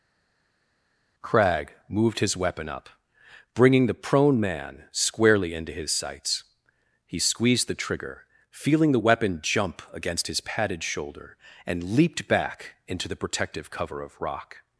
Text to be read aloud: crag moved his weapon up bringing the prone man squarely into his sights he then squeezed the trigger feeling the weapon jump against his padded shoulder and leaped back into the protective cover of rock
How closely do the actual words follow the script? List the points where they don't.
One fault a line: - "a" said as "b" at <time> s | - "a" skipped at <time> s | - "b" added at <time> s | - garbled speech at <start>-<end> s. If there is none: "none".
- "then" skipped at 7.2 s